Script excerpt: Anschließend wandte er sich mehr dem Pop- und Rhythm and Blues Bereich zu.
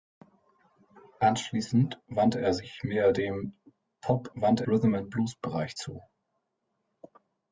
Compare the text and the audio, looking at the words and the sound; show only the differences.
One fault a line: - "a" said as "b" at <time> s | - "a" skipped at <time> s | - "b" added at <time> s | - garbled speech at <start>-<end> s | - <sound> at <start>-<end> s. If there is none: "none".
- "und" said as "wandte" at 4.3 s